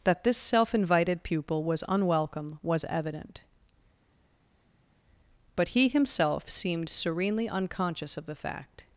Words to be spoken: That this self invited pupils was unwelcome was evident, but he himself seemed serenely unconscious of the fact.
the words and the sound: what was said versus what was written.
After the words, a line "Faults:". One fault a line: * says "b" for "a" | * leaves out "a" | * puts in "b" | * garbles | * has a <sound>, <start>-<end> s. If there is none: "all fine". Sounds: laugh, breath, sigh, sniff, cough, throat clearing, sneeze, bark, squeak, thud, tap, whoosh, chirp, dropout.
That this self invited pupil was unwelcome was evident, but he himself seemed serenely unconscious of the fact.
Faults:
* says "pupil" for "pupils"